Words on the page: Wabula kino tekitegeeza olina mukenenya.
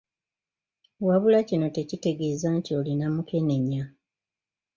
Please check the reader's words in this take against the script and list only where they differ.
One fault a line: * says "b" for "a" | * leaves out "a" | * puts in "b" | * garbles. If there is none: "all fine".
* puts in "nti"